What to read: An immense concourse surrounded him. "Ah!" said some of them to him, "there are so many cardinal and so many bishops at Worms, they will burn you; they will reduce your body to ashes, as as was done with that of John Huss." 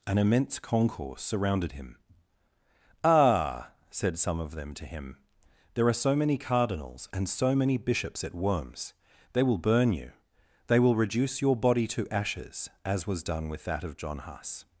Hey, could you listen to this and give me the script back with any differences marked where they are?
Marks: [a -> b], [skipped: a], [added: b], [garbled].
An immense concourse surrounded him. "Ah!" said some of them to him, "there are so many [cardinal -> cardinals] and so many bishops at Worms, they will burn you; they will reduce your body to ashes, as [skipped: as] was done with that of John Huss."